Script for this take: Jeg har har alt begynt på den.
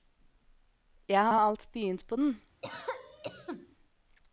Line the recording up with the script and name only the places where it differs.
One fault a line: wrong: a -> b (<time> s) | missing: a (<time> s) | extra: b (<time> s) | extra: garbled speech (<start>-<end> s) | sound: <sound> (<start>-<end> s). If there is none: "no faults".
sound: cough (2.6-3.8 s)